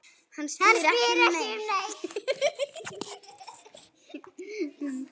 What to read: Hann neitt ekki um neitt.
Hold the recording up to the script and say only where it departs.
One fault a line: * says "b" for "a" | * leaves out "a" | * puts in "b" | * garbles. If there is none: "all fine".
* says "spyr" for "neitt"